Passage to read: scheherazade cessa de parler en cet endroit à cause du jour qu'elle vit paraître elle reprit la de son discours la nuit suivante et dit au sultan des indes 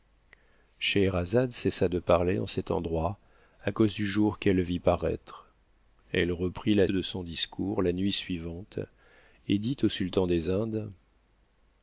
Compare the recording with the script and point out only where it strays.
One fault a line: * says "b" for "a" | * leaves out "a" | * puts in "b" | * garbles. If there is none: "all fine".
all fine